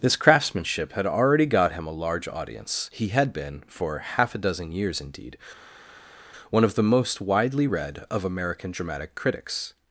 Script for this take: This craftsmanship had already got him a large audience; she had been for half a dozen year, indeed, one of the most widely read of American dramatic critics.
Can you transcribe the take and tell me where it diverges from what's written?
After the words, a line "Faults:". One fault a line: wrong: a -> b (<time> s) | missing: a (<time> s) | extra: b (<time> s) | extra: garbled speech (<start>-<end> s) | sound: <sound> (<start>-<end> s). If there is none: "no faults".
This craftsmanship had already got him a large audience; he had been for half a dozen years, indeed, one of the most widely read of American dramatic critics.
Faults:
wrong: she -> he (2.9 s)
wrong: year -> years (4.7 s)